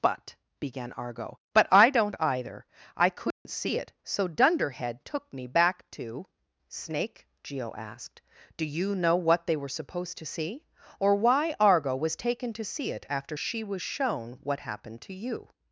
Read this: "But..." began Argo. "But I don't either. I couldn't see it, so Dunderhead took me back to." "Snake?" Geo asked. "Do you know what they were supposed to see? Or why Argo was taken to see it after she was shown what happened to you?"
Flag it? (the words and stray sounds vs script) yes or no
yes